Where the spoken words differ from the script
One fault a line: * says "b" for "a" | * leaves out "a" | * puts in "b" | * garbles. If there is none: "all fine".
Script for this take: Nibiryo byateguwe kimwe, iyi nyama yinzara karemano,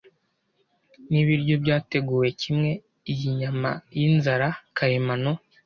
all fine